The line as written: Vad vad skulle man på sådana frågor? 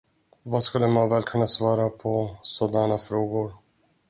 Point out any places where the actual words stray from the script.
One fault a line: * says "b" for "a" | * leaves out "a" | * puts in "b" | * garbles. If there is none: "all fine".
* leaves out "vad"
* puts in "väl kunna svara"